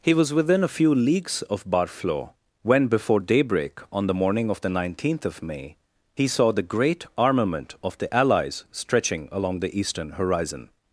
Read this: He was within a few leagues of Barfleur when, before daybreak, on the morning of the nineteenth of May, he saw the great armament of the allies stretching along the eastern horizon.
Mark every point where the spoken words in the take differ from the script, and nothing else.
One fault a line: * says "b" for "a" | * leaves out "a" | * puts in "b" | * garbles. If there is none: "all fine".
all fine